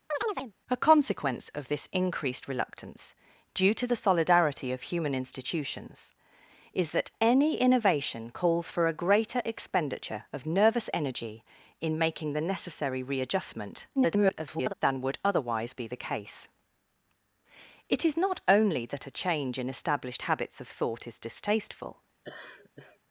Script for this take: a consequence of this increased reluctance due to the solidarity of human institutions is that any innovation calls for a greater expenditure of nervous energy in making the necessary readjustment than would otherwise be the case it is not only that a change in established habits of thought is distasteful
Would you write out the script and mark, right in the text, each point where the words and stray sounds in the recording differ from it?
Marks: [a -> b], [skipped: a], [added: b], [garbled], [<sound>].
[chirp] a consequence of this increased reluctance due to the solidarity of human institutions is that any innovation calls for a greater expenditure of nervous energy in making the necessary readjustment [garbled] than would otherwise be the case it is not only that a change in established habits of thought is distasteful [laugh]